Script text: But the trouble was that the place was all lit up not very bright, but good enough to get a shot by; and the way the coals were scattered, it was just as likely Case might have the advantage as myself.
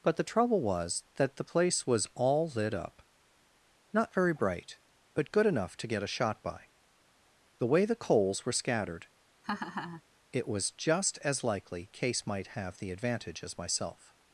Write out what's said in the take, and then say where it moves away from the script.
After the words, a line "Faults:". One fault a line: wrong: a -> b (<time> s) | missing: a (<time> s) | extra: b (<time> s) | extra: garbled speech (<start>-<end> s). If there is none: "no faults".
But the trouble was that the place was all lit up not very bright, but good enough to get a shot by; the way the coals were scattered, it was just as likely Case might have the advantage as myself.
Faults:
missing: and (6.7 s)